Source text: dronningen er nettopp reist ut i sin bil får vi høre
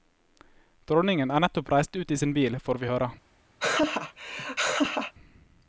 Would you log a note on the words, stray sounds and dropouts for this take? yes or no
yes